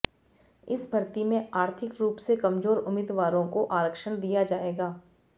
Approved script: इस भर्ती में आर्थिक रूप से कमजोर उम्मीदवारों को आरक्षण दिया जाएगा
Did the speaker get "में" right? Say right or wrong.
right